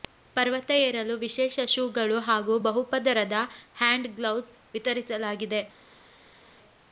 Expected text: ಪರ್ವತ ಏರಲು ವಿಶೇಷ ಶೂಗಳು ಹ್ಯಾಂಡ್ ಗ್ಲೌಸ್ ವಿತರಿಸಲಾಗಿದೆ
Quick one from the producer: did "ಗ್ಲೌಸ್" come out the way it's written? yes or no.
yes